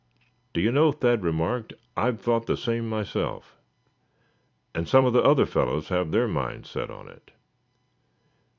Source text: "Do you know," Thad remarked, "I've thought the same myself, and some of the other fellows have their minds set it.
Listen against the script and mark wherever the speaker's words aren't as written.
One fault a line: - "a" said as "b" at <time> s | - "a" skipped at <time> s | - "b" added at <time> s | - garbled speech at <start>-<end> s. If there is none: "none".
- "on" added at 6.9 s